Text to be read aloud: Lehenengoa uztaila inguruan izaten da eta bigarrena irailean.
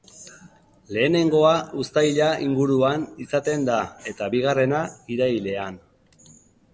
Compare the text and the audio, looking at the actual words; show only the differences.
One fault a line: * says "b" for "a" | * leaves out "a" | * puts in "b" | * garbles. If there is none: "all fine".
all fine